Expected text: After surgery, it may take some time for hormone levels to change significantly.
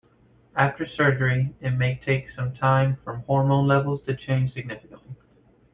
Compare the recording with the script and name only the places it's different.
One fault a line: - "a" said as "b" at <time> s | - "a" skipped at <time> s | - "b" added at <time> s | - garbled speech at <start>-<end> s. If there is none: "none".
none